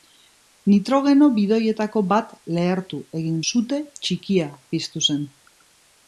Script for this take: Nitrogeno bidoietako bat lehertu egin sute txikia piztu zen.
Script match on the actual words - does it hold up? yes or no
yes